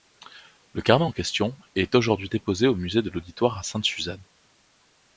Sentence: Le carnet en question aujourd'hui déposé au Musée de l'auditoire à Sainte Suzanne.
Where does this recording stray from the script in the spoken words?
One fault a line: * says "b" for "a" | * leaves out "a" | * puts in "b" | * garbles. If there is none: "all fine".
* puts in "est"